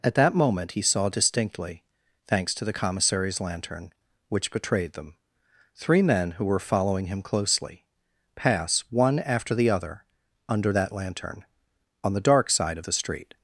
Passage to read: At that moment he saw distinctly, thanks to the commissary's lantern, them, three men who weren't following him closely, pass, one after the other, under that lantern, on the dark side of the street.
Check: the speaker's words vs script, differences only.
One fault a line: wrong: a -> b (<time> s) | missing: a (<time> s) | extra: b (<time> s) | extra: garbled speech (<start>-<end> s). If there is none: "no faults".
extra: which betrayed (4.3 s)
wrong: weren't -> were (6.4 s)